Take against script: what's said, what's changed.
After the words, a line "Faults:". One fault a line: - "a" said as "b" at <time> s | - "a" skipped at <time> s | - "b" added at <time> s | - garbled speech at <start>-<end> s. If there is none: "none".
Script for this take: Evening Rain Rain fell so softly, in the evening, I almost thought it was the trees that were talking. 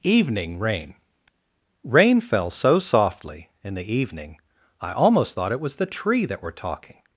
Evening Rain Rain fell so softly, in the evening, I almost thought it was the tree that were talking.
Faults:
- "trees" said as "tree" at 5.9 s